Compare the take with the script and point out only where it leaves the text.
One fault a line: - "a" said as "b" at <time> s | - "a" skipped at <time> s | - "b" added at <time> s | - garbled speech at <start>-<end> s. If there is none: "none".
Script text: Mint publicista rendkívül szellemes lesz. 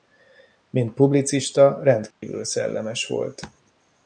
- "lesz" said as "volt" at 3.1 s